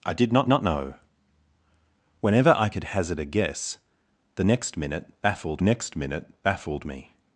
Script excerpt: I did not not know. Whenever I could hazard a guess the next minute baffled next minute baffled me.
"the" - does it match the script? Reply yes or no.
yes